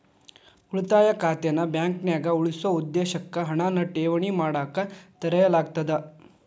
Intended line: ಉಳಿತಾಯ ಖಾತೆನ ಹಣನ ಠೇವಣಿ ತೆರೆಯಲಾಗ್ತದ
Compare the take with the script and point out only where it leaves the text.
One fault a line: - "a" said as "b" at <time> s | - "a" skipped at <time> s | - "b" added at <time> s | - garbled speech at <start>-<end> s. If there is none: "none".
- "ಬಾಂಕ್ನ್ಯಾಗ ಉಳಿಸೊ ಉದ್ದೇಶಕ್ಕ" added at 1.7 s
- "ಮಾಡಕ" added at 4.4 s